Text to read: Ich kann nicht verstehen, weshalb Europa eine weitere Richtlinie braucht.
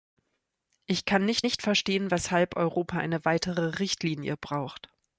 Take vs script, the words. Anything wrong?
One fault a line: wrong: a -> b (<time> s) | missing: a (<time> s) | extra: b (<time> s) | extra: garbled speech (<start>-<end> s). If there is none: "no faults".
extra: nicht (1.4 s)